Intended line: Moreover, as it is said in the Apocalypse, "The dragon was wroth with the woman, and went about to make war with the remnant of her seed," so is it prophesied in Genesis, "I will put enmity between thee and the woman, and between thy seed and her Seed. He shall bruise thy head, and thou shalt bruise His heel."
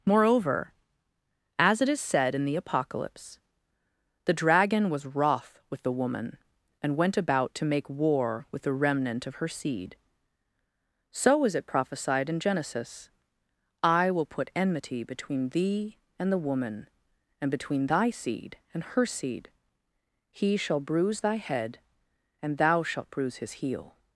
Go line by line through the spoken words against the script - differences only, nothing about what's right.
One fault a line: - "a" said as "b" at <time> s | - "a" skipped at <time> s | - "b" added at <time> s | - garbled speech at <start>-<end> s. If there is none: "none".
none